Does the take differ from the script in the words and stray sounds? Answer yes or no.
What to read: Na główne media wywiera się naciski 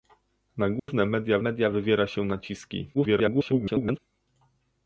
yes